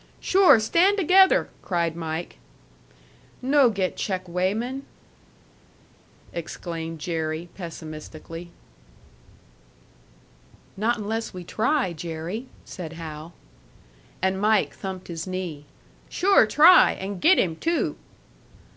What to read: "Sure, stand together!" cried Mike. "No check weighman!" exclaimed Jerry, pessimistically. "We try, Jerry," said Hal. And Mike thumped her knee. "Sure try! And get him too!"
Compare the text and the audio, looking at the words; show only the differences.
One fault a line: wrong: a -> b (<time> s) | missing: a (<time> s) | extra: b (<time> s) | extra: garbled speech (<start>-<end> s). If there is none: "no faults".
extra: get (3.7 s)
extra: Not unless (10.7 s)
wrong: her -> his (15.1 s)